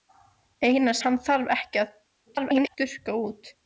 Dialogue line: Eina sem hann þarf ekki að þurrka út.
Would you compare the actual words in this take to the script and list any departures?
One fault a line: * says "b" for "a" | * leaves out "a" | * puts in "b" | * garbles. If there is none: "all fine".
* leaves out "sem"
* garbles